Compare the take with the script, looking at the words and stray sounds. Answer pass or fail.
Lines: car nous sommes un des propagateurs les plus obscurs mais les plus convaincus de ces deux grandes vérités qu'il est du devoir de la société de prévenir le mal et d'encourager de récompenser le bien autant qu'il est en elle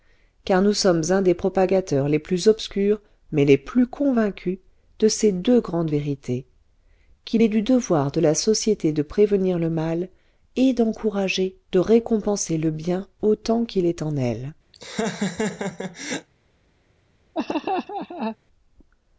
fail